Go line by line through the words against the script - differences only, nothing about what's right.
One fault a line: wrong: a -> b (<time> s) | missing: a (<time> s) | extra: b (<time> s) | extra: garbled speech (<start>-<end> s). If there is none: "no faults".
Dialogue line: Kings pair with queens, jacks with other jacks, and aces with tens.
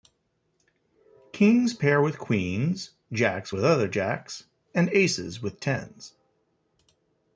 no faults